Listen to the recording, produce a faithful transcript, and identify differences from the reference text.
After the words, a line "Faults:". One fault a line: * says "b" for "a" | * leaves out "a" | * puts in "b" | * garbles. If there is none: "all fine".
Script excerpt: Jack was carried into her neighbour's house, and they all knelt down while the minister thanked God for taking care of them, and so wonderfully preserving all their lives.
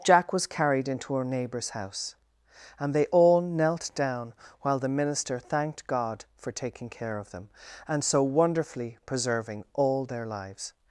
Jack was carried into her neighbour's house, and they all knelt down while the minister thanked God for taking care of them, and so wonderfully preserving all their lives.
Faults:
all fine